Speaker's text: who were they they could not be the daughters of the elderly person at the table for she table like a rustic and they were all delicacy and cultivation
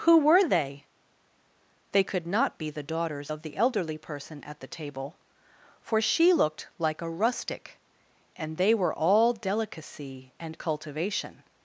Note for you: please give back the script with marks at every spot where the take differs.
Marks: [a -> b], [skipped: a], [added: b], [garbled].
who were they they could not be the daughters of the elderly person at the table for she [table -> looked] like a rustic and they were all delicacy and cultivation